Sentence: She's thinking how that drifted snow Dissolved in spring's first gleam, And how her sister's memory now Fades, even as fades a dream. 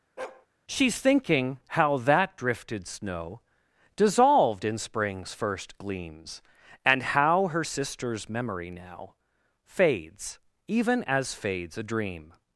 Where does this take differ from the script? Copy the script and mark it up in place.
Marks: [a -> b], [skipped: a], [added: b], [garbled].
She's thinking how that drifted snow Dissolved in spring's first [gleam, -> gleams] And how her sister's memory now Fades, even as fades a dream.